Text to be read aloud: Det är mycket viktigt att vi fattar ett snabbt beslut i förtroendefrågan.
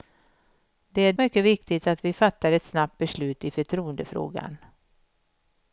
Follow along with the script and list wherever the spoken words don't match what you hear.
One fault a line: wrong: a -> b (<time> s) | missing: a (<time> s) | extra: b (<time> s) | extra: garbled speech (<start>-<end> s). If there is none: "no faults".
no faults